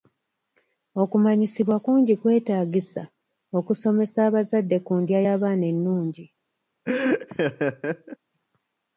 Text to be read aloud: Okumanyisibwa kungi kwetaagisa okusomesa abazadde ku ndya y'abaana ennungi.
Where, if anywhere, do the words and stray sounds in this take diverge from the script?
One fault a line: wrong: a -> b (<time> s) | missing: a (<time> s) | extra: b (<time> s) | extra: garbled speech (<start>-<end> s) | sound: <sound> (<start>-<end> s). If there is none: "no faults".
sound: laugh (6.9-8.2 s)